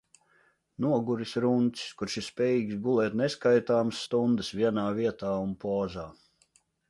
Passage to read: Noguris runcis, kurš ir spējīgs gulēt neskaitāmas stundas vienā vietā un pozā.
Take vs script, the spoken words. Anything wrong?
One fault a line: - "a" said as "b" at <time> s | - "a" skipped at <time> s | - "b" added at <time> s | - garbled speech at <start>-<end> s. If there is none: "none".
none